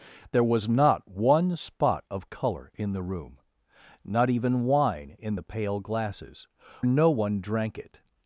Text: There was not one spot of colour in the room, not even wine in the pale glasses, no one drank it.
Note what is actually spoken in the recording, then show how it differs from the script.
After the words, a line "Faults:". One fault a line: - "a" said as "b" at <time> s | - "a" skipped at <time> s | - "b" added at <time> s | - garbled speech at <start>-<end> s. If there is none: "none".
There was not one spot of colour in the room, not even wine in the pale glasses, no one drank it.
Faults:
none